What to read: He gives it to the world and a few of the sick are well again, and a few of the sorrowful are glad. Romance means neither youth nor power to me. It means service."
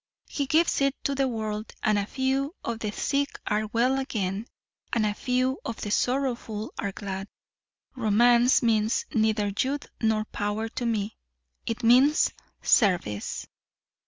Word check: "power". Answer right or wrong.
right